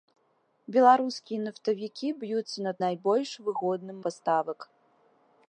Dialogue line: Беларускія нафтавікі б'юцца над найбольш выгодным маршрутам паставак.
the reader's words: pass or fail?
fail